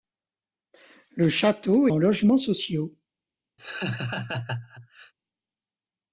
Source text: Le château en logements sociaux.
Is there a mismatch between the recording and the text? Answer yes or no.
no